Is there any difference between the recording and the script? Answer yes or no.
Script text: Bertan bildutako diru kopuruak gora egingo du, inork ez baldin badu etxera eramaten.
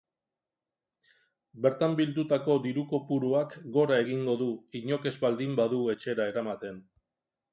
no